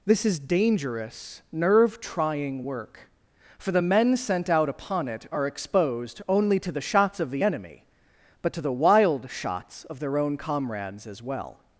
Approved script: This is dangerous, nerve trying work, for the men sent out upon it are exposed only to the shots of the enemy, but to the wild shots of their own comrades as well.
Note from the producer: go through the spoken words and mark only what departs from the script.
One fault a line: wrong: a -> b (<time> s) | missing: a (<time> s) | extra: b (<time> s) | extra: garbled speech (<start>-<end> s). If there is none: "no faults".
no faults